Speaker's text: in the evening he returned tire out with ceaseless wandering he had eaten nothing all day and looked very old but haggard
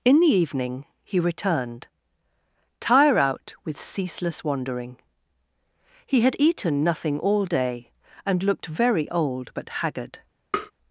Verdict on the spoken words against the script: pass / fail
pass